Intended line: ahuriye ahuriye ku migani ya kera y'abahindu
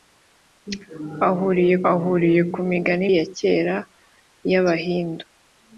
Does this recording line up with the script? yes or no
yes